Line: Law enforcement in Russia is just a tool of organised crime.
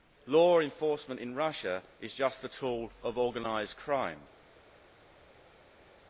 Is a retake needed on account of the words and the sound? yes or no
no